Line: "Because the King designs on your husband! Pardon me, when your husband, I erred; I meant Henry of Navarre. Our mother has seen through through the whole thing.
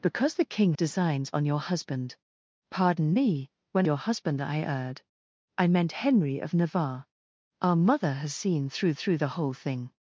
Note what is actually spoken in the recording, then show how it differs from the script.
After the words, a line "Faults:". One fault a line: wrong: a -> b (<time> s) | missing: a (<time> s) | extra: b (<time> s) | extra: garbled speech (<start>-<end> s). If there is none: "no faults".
"Because the King designs on your husband! Pardon me, when your husband, I erred; I meant Henry of Navarre. Our mother has seen through through the whole thing.
Faults:
no faults